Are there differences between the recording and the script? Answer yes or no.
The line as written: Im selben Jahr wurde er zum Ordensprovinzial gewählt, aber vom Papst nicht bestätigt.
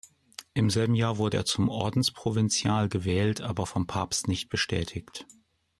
no